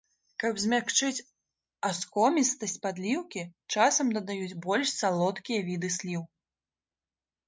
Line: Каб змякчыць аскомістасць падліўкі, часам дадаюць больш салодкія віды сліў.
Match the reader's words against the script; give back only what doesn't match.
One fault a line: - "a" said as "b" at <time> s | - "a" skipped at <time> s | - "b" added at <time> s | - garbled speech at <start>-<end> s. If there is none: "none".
none